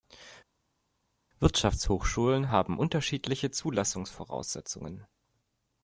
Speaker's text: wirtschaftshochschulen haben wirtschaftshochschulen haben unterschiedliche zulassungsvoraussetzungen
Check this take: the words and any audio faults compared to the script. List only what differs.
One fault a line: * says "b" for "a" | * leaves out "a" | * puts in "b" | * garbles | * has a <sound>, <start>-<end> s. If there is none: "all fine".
* leaves out "wirtschaftshochschulen haben"